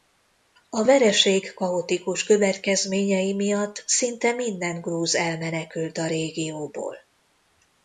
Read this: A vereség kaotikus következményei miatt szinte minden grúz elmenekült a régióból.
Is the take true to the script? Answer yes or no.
yes